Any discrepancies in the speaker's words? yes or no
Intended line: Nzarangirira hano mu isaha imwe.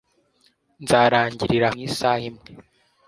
yes